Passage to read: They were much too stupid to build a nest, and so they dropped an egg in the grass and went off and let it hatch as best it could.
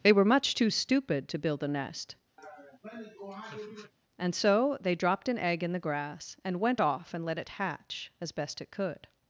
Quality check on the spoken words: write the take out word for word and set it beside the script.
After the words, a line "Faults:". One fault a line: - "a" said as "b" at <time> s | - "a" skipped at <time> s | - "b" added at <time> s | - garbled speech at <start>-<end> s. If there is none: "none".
They were much too stupid to build a nest, and so they dropped an egg in the grass and went off and let it hatch as best it could.
Faults:
none